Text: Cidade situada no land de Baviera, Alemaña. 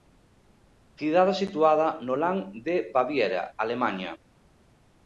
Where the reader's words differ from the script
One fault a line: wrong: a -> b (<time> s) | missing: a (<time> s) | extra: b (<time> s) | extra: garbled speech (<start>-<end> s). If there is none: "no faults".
no faults